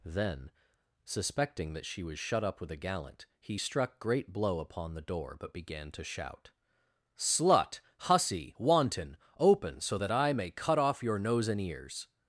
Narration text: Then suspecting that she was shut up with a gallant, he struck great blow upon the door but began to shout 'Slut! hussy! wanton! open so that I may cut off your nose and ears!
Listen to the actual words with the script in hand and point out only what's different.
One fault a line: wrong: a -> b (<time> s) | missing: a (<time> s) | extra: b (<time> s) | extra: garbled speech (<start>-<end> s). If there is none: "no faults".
no faults